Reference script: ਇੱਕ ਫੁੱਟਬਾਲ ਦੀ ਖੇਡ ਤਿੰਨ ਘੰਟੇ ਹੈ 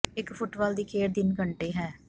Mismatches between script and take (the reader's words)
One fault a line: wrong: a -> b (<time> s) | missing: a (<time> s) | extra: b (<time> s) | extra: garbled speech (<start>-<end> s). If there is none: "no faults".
no faults